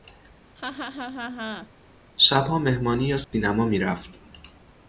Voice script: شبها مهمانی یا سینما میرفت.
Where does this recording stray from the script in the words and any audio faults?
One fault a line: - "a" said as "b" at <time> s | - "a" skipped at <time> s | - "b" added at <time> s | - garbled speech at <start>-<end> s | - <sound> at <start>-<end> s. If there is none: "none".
- laugh at 0.6-1.7 s
- dropout at 3.2-3.3 s